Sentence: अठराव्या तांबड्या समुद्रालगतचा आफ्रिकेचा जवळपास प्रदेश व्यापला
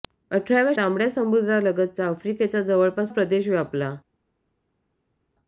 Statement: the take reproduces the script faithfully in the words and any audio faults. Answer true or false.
true